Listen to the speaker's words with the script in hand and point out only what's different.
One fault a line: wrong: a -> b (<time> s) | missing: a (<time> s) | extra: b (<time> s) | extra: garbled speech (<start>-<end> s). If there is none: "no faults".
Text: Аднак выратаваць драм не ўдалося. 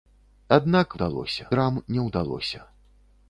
wrong: выратаваць -> ўдалося (0.9 s)